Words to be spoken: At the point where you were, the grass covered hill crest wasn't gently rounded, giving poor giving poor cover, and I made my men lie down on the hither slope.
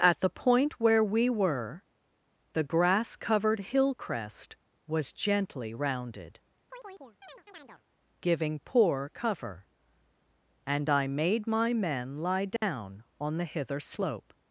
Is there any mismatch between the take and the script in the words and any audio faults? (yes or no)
yes